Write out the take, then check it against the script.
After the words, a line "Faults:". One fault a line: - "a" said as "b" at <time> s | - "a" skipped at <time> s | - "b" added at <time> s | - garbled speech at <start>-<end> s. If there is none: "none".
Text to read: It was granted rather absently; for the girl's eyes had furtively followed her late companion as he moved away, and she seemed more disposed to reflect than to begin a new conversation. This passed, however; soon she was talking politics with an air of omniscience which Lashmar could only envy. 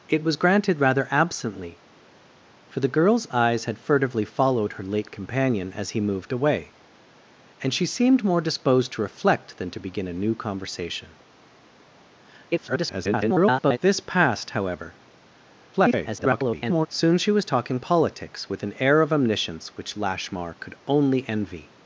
It was granted rather absently; for the girl's eyes had furtively followed her late companion as he moved away, and she seemed more disposed to reflect than to begin a new conversation. [garbled] This passed, however; [garbled] soon she was talking politics with an air of omniscience which Lashmar could only envy.
Faults:
- garbled speech at 12.5-13.8 s
- garbled speech at 15.7-16.9 s